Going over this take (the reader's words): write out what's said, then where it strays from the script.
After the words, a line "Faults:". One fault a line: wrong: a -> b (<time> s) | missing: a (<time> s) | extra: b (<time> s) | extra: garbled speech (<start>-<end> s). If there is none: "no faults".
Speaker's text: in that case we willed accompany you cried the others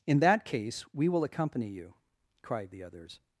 in that case we will accompany you cried the others
Faults:
wrong: willed -> will (1.1 s)